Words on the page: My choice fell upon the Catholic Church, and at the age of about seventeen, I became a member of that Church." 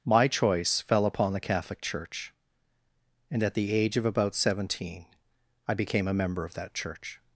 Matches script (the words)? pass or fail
pass